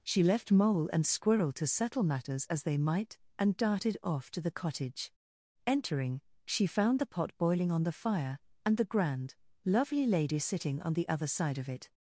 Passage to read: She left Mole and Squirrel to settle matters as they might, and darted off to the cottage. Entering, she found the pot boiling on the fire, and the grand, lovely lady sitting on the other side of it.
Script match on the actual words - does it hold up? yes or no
yes